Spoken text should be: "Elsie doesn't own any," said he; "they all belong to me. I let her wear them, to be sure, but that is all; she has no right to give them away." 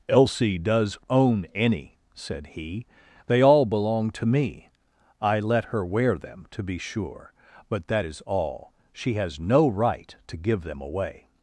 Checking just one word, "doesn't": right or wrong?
wrong